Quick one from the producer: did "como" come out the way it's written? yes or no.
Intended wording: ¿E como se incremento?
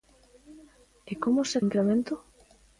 yes